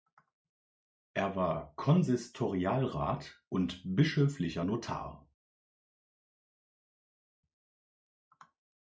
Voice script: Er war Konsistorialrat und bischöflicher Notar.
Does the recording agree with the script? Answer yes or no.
yes